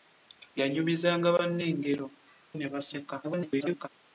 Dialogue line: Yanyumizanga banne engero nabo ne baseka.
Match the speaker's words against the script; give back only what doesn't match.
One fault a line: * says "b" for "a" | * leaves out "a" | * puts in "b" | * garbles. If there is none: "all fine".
* leaves out "nabo"
* garbles